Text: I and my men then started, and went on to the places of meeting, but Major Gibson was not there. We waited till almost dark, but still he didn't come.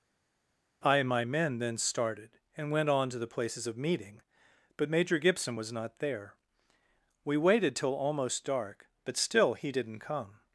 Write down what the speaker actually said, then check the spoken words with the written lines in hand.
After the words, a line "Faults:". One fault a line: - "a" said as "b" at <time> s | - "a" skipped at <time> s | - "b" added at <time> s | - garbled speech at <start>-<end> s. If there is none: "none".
I and my men then started, and went on to the places of meeting, but Major Gibson was not there. We waited till almost dark, but still he didn't come.
Faults:
none